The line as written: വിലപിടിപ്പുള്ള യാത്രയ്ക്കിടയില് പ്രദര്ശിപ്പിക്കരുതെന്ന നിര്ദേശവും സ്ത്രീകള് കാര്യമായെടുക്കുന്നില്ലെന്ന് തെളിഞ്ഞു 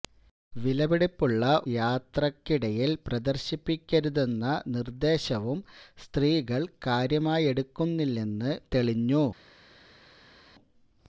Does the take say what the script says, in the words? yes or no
yes